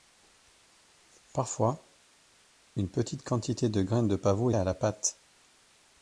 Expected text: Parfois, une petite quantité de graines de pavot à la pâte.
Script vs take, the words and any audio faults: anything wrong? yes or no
no